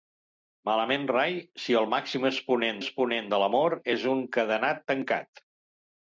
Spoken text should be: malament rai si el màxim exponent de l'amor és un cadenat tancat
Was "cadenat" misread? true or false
false